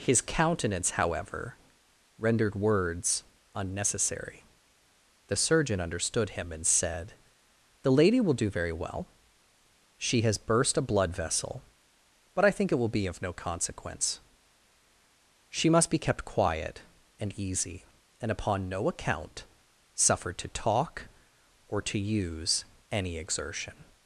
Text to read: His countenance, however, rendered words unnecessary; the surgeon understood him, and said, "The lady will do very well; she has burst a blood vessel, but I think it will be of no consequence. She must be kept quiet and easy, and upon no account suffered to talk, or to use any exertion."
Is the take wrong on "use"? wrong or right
right